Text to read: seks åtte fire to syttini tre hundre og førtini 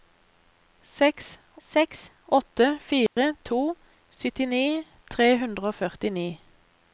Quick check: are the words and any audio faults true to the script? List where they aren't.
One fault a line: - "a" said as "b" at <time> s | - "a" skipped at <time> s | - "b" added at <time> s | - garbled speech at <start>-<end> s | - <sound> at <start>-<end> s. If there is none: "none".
- "seks" added at 1.7 s
- dropout at 3.1-3.2 s